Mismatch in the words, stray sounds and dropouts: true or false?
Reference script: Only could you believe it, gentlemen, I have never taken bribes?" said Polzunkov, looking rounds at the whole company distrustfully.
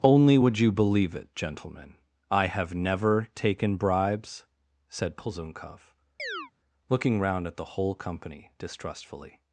true